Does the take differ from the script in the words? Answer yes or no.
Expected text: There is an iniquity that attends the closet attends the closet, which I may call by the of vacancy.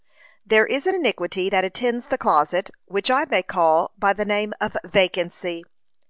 yes